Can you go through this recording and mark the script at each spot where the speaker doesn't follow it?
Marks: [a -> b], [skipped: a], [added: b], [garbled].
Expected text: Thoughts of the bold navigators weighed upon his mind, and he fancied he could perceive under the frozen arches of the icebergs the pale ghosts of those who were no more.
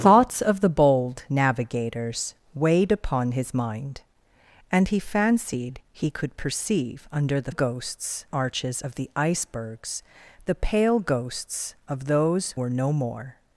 Thoughts of the bold navigators weighed upon his mind, and he fancied he could perceive under the [frozen -> ghosts] arches of the icebergs the pale ghosts of those [skipped: who] were no more.